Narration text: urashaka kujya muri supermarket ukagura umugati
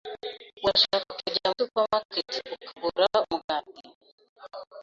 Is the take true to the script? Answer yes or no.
no